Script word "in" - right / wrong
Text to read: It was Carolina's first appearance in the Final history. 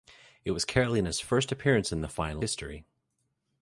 right